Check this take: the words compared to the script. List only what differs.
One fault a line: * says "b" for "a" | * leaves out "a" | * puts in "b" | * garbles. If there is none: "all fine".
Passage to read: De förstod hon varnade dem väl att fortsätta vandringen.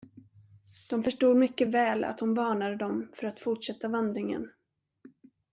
* puts in "mycket väl att"
* says "för" for "väl"